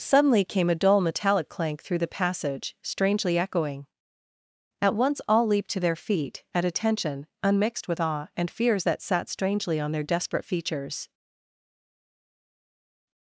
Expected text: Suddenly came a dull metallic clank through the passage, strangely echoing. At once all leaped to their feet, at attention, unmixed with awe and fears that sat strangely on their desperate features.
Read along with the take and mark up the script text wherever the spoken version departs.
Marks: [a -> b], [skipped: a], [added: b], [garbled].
Suddenly came a dull metallic clank through the passage, strangely echoing. At once all leaped to their feet, at attention, unmixed with awe and fears that sat strangely on their desperate features.